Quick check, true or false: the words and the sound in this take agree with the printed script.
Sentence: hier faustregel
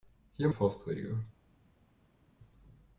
true